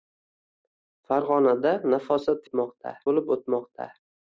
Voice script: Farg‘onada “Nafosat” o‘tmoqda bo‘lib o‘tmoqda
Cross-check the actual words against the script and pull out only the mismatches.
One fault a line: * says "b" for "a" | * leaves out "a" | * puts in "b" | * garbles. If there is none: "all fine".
all fine